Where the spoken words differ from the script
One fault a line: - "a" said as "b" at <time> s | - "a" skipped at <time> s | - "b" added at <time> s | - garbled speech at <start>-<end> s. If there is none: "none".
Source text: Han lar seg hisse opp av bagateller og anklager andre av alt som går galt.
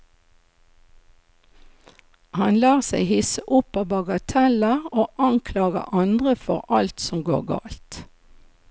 - "av" said as "for" at 6.5 s